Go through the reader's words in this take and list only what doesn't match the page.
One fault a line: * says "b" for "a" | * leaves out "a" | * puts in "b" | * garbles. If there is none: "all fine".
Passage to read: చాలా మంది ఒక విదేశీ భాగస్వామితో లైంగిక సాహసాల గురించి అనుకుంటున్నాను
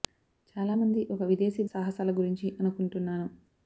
* leaves out "భాగస్వామితో లైంగిక"